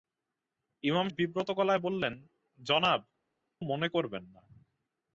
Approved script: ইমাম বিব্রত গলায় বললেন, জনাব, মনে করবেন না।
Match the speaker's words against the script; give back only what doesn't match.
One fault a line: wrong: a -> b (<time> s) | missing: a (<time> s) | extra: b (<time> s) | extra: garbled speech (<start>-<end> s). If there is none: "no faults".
no faults